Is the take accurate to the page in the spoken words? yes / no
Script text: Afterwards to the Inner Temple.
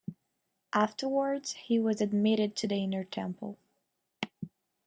no